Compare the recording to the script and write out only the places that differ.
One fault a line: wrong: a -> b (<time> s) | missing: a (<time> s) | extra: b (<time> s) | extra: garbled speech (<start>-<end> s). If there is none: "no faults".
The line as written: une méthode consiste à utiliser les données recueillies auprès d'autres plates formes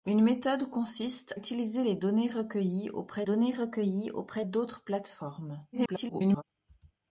missing: à (1.4 s)
extra: données recueillies auprès (3.2 s)
extra: garbled speech (5.7-6.4 s)